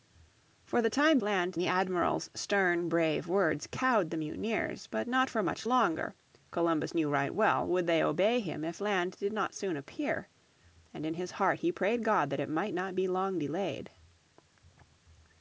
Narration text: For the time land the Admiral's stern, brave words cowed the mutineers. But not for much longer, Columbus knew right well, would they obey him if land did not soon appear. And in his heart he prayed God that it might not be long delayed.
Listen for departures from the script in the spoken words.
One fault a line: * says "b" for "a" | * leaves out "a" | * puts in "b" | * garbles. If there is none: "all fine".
all fine